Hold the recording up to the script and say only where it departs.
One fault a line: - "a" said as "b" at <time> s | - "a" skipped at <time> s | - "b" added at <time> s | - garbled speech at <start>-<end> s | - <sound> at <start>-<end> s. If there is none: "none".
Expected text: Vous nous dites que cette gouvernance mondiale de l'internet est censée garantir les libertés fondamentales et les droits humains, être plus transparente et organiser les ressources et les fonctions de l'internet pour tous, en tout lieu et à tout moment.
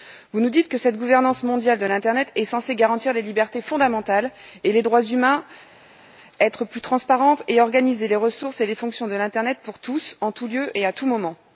none